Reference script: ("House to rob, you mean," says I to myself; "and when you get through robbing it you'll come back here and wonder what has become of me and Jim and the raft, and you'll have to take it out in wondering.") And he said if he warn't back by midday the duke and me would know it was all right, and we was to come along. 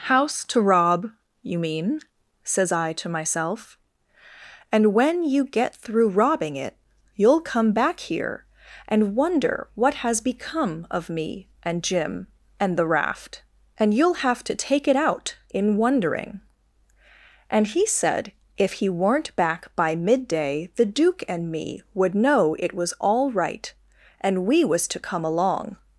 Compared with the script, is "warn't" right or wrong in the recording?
wrong